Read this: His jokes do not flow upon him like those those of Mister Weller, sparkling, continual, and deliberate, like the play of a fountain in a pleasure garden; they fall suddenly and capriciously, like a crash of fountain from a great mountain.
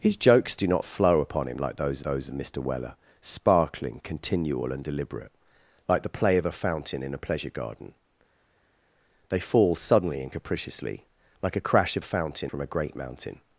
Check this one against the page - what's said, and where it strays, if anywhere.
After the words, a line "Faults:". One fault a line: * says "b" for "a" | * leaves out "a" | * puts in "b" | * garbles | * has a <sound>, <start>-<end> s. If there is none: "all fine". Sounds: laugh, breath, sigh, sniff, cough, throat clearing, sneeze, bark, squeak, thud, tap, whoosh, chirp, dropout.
His jokes do not flow upon him like those those of Mister Weller, sparkling, continual, and deliberate, like the play of a fountain in a pleasure garden; they fall suddenly and capriciously, like a crash of fountain from a great mountain.
Faults:
all fine